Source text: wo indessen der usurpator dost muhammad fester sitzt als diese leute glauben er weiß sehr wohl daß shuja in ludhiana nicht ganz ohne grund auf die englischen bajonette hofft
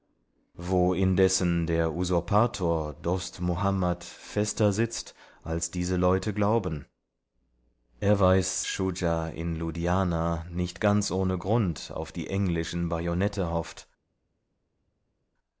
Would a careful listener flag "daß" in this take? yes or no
yes